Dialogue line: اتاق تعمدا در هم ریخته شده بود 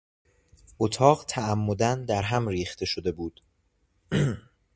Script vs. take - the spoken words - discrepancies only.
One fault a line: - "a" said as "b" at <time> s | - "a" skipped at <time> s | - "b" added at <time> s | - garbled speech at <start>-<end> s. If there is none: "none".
none